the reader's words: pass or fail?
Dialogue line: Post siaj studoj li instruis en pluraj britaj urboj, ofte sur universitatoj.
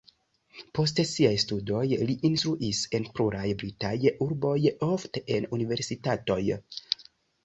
fail